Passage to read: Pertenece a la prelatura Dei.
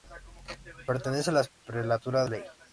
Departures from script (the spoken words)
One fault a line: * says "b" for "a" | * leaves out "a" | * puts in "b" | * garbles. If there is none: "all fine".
all fine